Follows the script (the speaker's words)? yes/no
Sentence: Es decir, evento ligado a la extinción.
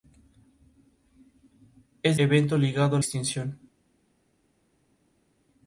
no